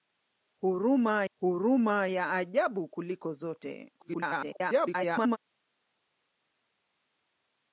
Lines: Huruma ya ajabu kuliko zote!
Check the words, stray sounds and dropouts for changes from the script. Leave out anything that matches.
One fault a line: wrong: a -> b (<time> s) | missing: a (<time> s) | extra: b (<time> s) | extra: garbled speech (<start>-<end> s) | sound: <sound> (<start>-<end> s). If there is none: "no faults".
extra: huruma (1.3 s)
extra: garbled speech (4.0-5.4 s)